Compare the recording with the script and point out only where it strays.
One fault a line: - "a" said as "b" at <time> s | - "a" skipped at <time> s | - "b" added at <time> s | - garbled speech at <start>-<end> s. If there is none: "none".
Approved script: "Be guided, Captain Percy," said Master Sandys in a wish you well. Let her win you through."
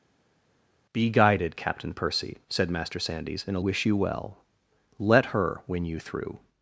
none